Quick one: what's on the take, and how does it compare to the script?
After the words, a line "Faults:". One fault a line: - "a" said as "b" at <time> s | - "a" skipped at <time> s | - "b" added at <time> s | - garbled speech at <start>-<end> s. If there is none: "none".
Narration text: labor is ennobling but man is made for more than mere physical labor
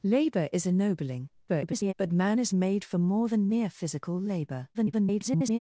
labor is ennobling [garbled] but man is made for more than mere physical labor [garbled]
Faults:
- garbled speech at 1.5-1.9 s
- garbled speech at 4.7-5.6 s